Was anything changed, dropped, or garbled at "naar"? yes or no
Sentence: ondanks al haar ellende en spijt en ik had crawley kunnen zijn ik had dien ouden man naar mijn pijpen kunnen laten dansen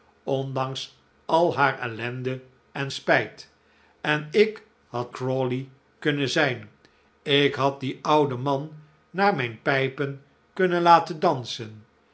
no